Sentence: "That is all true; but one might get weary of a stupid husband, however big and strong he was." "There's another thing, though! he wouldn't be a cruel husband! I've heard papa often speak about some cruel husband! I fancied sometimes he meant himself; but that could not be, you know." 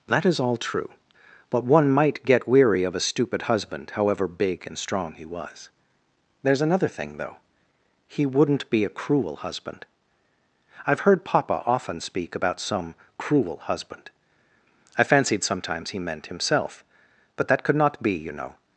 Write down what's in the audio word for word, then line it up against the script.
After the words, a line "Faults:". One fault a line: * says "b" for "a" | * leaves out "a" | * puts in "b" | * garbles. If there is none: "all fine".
"That is all true; but one might get weary of a stupid husband, however big and strong he was." "There's another thing, though! he wouldn't be a cruel husband! I've heard papa often speak about some cruel husband! I fancied sometimes he meant himself; but that could not be, you know."
Faults:
all fine